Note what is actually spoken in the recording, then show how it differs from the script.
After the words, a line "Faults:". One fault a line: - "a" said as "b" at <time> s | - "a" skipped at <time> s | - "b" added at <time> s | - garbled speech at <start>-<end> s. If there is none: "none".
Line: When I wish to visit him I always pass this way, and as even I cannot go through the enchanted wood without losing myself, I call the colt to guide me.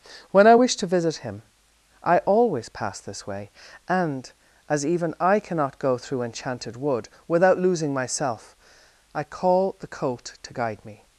When I wish to visit him I always pass this way, and as even I cannot go through enchanted wood without losing myself, I call the colt to guide me.
Faults:
- "the" skipped at 6.2 s